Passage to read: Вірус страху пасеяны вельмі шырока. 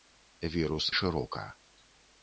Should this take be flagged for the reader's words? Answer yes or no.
yes